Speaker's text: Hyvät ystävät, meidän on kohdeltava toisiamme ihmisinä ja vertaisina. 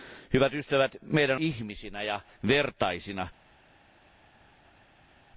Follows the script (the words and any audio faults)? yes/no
no